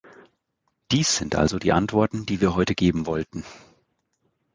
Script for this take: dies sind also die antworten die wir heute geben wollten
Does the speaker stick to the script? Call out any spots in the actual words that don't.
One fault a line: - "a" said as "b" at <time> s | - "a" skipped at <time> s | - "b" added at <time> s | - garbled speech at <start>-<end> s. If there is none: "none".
none